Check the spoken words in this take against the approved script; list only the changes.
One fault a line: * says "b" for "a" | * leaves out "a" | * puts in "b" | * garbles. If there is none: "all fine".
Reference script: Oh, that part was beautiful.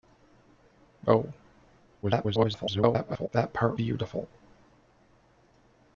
* garbles
* leaves out "was"